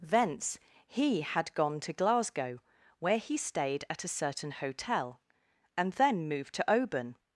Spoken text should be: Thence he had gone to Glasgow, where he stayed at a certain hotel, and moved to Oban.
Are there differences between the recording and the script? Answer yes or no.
yes